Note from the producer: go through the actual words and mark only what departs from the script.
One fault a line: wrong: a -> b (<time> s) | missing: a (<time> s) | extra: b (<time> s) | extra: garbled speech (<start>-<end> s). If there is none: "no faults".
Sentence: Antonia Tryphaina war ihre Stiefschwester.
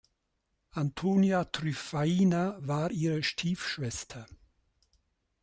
no faults